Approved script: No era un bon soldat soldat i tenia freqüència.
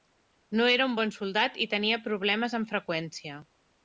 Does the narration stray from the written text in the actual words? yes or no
yes